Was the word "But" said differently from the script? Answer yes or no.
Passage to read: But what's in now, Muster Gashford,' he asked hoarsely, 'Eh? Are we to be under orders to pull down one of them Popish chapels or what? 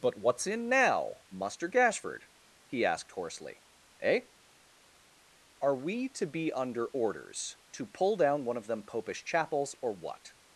no